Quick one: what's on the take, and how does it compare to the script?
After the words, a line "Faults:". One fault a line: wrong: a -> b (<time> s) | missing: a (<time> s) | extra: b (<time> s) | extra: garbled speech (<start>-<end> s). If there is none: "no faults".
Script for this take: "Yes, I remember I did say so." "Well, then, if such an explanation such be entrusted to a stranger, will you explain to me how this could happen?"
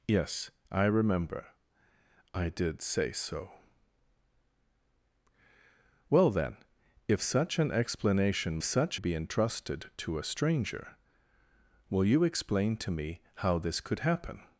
"Yes, I remember I did say so." "Well, then, if such an explanation such be entrusted to a stranger, will you explain to me how this could happen?"
Faults:
no faults